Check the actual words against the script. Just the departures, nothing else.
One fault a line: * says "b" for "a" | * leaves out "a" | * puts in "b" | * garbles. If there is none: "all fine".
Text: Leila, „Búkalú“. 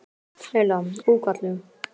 all fine